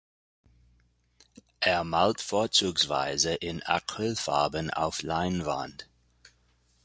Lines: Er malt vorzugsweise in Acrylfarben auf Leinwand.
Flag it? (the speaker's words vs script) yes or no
no